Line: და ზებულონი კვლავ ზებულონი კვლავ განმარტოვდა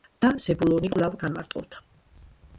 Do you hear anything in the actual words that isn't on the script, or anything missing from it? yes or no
yes